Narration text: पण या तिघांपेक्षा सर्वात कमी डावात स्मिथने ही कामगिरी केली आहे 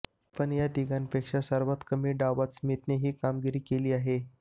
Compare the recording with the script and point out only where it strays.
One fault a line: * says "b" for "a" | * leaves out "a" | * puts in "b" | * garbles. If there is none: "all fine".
all fine